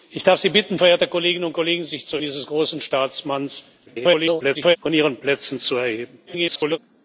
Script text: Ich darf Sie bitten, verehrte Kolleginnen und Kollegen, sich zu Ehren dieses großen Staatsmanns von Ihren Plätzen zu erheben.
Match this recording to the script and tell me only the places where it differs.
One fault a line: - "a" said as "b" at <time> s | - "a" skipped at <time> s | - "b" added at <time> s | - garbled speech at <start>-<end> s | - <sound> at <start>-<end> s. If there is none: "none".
- "Ehren" skipped at 2.2 s
- garbled speech at 3.9-4.8 s
- garbled speech at 6.3-6.8 s